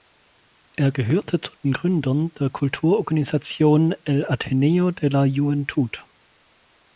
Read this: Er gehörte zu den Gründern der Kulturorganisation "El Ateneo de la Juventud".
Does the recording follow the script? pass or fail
pass